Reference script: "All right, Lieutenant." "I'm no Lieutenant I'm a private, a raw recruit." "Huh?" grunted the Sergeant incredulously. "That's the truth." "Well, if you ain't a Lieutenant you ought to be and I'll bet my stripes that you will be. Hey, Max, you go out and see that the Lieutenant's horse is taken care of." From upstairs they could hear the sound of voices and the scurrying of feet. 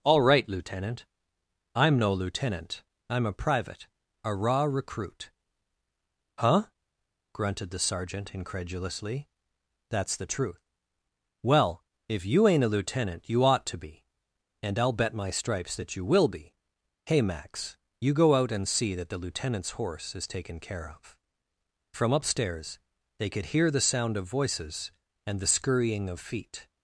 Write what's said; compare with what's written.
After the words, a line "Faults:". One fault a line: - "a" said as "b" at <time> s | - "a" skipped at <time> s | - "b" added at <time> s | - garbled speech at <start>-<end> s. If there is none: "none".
"All right, Lieutenant." "I'm no Lieutenant I'm a private, a raw recruit." "Huh?" grunted the Sergeant incredulously. "That's the truth." "Well, if you ain't a Lieutenant you ought to be and I'll bet my stripes that you will be. Hey, Max, you go out and see that the Lieutenant's horse is taken care of." From upstairs they could hear the sound of voices and the scurrying of feet.
Faults:
none